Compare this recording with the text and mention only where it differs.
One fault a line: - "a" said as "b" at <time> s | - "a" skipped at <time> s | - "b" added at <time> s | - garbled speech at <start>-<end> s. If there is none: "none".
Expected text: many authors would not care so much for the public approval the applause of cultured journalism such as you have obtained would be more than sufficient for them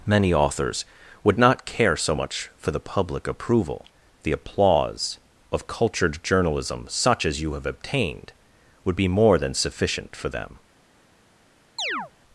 none